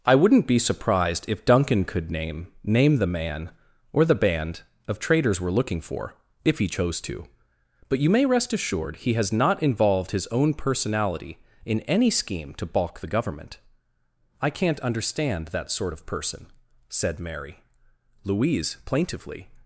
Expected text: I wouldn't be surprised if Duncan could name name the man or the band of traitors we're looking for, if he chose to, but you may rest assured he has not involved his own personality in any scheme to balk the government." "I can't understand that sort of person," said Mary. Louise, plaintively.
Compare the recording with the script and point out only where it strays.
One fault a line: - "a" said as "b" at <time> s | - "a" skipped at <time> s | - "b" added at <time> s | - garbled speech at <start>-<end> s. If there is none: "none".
none